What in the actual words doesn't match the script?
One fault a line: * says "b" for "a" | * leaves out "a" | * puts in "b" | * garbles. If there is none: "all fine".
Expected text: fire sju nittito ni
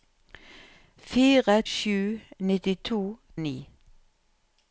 all fine